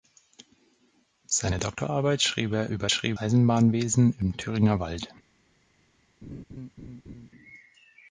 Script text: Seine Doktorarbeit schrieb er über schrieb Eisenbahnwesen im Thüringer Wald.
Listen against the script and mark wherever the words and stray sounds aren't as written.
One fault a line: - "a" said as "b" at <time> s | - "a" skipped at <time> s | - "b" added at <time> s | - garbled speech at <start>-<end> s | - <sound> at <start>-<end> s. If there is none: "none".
- laugh at 6.2-7.3 s